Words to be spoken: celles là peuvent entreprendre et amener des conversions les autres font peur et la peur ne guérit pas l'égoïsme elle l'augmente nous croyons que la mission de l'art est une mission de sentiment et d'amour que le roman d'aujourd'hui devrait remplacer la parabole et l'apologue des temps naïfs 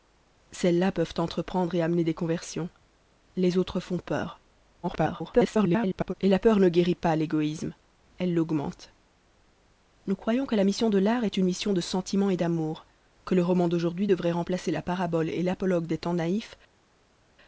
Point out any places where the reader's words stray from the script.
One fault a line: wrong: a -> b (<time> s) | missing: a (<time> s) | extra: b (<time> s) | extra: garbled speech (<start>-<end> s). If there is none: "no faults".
extra: garbled speech (4.8-6.1 s)